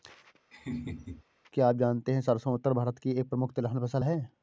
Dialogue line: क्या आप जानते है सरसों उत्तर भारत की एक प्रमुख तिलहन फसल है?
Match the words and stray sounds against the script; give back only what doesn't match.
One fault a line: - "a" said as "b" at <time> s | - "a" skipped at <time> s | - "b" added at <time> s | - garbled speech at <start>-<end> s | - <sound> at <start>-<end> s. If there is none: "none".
- laugh at 0.5-1.2 s